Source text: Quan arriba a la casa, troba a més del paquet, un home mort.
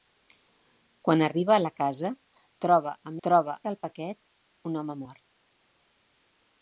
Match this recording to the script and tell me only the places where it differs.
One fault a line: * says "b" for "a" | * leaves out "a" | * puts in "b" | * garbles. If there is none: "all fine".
* says "troba" for "més"